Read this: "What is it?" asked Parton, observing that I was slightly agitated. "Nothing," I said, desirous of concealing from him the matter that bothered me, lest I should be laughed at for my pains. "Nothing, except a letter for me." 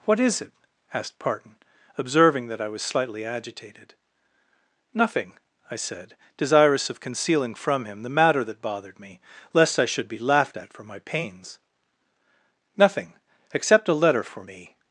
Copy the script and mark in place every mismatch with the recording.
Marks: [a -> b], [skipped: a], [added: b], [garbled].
"What is it?" asked Parton, observing that I was slightly agitated. "Nothing," I said, desirous of concealing from him the matter that bothered me, lest I should be laughed at for my pains. "Nothing, except a letter for me."